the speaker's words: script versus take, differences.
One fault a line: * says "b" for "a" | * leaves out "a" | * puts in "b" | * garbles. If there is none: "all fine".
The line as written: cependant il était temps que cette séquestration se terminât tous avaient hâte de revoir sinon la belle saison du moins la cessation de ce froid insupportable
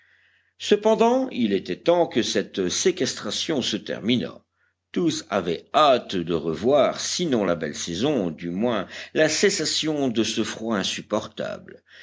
all fine